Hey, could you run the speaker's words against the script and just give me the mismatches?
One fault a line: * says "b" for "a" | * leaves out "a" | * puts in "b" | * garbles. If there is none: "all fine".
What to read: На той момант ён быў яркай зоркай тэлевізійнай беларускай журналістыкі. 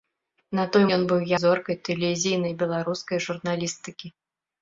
* leaves out "момант"
* leaves out "яркай"